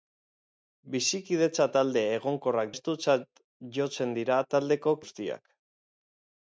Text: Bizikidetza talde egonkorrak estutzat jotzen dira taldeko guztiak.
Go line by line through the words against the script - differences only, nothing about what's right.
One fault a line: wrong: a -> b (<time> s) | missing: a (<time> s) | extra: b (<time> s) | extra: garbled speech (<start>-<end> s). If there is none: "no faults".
no faults